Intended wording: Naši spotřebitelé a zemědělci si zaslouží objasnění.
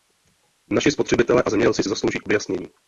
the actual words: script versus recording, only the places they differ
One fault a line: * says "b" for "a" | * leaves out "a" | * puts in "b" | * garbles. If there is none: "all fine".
all fine